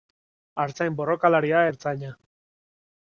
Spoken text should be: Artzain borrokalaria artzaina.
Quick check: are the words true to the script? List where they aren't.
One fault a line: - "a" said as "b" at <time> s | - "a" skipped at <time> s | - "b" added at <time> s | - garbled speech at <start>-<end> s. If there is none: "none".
none